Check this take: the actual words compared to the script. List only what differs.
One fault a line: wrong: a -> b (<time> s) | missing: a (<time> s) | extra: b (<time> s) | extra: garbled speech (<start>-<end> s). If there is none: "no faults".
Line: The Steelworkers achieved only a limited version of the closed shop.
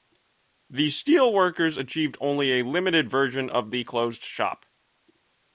no faults